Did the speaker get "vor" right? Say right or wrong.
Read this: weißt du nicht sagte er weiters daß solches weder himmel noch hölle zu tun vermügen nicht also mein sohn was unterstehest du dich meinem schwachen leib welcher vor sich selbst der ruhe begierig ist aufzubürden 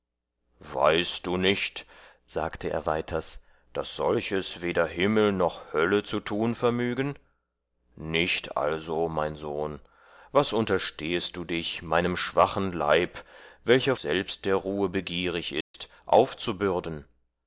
wrong